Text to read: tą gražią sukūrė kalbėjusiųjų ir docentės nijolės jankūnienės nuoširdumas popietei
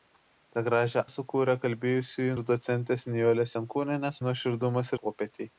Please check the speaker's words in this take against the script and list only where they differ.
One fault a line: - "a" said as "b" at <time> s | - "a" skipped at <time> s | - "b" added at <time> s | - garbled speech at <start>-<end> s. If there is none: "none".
none